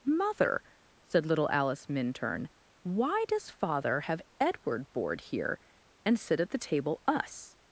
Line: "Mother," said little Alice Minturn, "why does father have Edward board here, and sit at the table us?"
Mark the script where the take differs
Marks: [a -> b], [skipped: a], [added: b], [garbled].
"Mother," said little Alice Minturn, "why does father have Edward board here, and sit at the table us?"